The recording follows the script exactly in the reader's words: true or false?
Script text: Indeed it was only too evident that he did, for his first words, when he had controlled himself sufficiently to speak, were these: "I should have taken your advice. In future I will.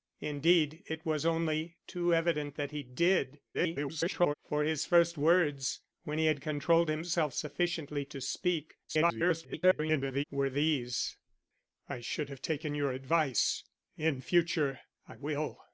false